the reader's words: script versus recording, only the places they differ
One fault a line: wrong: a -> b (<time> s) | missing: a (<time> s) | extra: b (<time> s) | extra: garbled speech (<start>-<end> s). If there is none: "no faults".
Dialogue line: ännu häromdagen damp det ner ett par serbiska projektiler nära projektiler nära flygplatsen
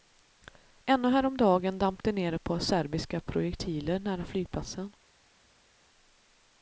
missing: projektiler nära (4.2 s)